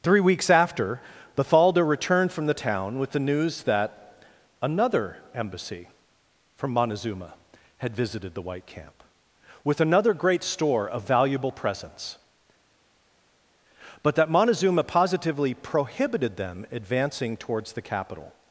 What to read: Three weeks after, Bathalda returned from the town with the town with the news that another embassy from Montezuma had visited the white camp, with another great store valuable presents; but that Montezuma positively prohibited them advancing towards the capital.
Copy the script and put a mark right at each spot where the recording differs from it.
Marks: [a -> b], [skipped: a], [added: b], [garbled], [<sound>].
Three weeks after, Bathalda returned from the town with the [skipped: town with the] news that another embassy from Montezuma had visited the white camp, with another great store [added: of] valuable presents; but that Montezuma positively prohibited them advancing towards the capital.